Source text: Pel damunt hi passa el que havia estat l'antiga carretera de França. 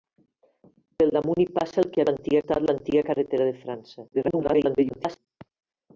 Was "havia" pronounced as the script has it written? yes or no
no